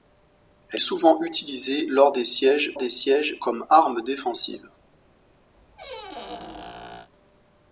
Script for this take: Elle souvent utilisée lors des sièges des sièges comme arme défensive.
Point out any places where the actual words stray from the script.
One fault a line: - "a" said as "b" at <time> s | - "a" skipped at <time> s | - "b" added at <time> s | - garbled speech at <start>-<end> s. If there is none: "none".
none